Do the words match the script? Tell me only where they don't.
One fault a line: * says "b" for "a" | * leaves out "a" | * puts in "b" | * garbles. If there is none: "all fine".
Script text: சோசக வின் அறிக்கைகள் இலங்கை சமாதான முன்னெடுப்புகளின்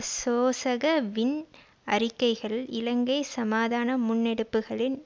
all fine